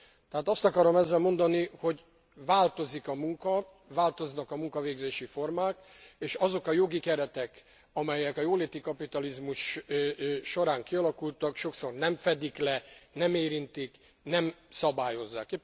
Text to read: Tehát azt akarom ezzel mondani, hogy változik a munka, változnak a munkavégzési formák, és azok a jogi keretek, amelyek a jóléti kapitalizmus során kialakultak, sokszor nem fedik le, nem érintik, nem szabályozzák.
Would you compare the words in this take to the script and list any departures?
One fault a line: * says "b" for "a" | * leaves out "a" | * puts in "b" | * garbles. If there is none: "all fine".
all fine